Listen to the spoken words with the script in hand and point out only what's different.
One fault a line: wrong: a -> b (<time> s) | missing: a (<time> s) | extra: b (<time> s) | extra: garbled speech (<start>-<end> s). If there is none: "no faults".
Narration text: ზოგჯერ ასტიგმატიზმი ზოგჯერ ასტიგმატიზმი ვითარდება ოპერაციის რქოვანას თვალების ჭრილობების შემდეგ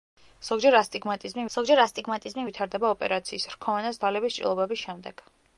no faults